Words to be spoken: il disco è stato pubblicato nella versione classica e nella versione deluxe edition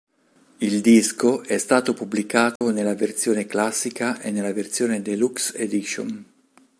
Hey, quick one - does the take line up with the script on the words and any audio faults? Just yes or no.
no